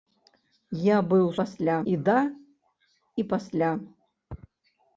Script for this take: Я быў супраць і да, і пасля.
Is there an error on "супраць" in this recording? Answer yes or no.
yes